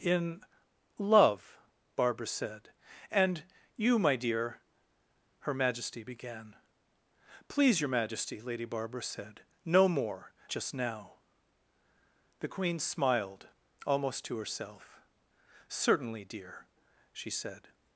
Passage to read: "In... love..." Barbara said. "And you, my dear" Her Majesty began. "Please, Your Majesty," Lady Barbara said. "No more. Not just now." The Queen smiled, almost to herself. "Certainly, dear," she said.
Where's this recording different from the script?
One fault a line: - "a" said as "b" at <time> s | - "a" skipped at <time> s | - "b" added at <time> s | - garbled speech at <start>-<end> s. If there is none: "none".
- "Not" skipped at 10.3 s